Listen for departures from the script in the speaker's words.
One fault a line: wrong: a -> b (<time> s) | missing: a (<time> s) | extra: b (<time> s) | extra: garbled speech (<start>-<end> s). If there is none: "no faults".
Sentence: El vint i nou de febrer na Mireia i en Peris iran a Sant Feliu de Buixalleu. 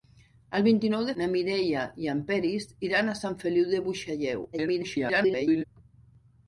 missing: febrer (1.1 s)
extra: garbled speech (4.5-5.6 s)